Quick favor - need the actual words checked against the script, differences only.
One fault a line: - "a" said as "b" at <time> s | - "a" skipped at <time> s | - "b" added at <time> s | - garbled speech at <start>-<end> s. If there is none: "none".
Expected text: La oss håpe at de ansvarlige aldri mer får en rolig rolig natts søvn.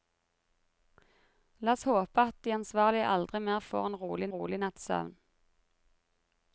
none